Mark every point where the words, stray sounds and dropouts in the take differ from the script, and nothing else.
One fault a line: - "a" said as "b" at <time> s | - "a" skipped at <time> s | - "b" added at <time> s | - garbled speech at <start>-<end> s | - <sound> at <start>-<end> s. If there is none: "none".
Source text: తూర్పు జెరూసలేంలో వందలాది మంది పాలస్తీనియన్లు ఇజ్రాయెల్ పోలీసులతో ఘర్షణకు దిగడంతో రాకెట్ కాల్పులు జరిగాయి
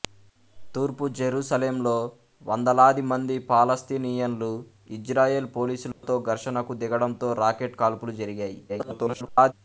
- dropout at 5.9-6.0 s
- garbled speech at 8.7-9.5 s